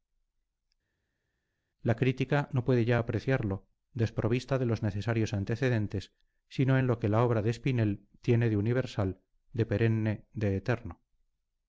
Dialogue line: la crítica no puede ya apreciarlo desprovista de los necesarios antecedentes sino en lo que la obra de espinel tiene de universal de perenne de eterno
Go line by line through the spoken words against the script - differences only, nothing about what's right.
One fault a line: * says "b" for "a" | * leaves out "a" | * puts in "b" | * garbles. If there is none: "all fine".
all fine